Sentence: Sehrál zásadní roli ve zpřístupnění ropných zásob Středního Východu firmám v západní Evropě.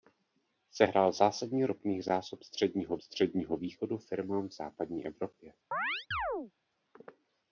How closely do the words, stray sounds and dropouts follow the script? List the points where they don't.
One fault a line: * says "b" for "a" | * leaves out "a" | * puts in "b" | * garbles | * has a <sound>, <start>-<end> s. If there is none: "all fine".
* leaves out "roli ve zpřístupnění"
* puts in "Středního"
* has a chirp, 5.7-6.5 s